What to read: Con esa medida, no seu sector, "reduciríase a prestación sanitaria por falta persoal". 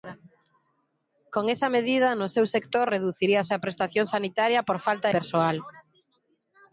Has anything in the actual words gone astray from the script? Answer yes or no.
no